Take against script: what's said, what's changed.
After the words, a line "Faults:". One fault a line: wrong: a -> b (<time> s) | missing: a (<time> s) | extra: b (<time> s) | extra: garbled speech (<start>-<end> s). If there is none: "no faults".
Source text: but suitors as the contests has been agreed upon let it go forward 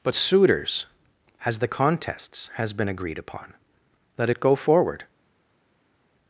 but suitors as the contests has been agreed upon let it go forward
Faults:
no faults